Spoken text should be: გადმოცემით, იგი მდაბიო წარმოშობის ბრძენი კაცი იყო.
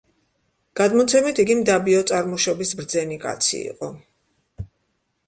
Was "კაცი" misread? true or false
false